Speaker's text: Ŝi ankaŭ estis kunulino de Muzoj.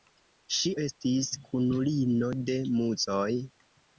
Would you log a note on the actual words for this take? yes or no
yes